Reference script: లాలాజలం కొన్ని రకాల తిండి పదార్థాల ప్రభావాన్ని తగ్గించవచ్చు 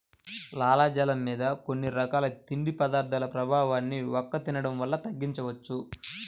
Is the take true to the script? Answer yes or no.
no